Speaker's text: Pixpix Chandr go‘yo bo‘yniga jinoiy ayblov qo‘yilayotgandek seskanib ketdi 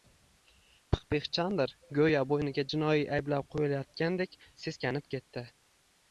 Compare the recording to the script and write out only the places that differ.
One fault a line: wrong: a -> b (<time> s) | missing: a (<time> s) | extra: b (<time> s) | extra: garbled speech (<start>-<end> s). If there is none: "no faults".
no faults